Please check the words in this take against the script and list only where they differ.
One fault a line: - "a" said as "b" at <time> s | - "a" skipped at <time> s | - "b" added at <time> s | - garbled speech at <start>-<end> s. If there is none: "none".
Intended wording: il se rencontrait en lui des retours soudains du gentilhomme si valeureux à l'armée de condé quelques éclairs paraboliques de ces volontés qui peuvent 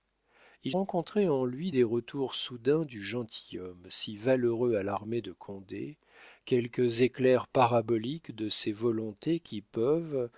- "se" skipped at 0.8 s